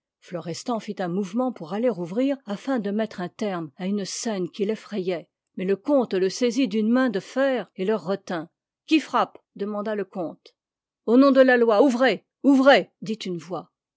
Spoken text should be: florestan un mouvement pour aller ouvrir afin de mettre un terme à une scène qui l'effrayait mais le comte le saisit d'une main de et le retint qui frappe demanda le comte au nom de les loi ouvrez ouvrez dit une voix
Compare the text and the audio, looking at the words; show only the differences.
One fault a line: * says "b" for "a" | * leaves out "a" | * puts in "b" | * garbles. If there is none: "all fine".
* puts in "fit"
* puts in "fer"
* says "la" for "les"